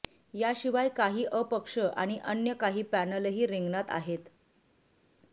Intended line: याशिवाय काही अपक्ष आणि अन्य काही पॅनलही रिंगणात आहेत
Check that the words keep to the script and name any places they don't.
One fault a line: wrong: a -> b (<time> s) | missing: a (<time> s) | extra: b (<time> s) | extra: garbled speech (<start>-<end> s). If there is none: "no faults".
no faults